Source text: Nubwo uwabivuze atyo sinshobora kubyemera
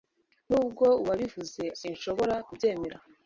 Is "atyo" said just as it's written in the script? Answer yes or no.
no